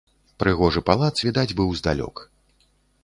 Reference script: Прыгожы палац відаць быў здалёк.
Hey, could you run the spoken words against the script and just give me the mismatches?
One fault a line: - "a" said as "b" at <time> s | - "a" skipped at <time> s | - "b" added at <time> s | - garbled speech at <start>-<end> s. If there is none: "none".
none